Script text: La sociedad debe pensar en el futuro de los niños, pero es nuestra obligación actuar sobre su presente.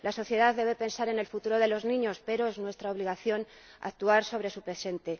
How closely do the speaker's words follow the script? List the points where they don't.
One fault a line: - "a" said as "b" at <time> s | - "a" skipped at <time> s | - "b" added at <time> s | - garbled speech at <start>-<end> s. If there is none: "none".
none